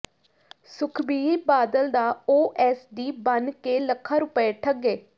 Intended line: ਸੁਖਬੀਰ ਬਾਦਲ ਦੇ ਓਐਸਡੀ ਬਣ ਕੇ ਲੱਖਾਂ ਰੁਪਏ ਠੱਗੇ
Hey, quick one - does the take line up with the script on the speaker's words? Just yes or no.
no